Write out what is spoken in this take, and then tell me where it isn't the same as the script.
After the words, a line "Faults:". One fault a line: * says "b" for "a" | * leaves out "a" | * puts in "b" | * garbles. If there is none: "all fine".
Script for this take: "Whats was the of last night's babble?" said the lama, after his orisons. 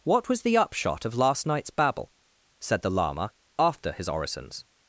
"What was the upshot of last night's babble?" said the lama, after his orisons.
Faults:
* says "What" for "Whats"
* puts in "upshot"